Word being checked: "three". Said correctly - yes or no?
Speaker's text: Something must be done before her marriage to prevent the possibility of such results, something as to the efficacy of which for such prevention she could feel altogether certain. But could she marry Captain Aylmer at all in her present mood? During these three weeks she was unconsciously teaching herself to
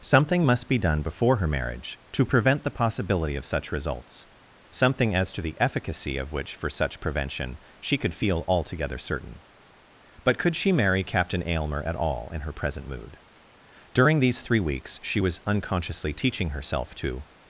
yes